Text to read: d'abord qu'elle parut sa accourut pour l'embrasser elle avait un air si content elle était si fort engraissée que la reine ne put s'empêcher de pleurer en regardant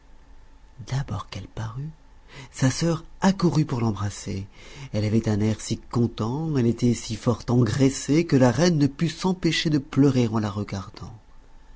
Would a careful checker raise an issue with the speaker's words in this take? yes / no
yes